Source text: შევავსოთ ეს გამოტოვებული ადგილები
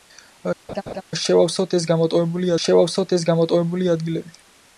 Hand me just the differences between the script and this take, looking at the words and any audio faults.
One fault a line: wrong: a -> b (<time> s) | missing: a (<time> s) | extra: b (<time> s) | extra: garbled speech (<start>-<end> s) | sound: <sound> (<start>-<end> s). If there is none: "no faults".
sound: laugh (0.7-1.0 s)
extra: შევავსოთ ეს გამოტოვებული (2.6 s)